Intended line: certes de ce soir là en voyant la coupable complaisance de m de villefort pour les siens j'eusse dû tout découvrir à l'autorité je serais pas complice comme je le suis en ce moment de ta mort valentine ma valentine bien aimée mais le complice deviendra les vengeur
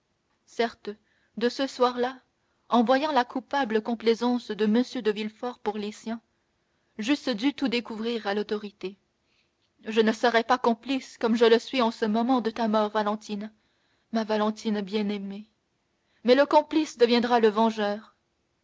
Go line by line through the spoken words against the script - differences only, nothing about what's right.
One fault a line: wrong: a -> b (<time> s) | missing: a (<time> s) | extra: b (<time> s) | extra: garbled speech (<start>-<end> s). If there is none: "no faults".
extra: ne (10.0 s)
wrong: les -> le (17.4 s)